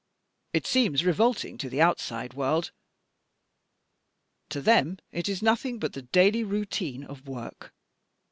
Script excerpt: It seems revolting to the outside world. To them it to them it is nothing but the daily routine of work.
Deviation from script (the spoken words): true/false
true